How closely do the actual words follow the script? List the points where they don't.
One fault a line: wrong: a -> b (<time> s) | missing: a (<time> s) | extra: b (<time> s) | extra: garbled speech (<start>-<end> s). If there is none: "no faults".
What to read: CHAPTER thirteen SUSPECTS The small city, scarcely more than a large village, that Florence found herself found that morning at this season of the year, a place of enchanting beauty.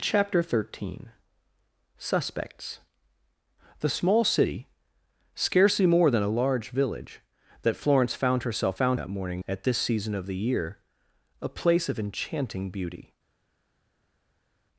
no faults